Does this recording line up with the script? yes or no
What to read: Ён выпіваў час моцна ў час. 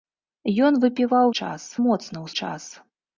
yes